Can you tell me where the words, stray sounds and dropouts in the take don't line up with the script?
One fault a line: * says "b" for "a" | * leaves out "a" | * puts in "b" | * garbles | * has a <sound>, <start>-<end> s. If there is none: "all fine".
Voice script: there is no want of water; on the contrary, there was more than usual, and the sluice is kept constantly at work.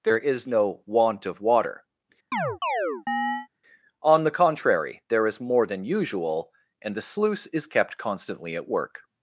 * has a chirp, 2.3-3.5 s
* says "is" for "was"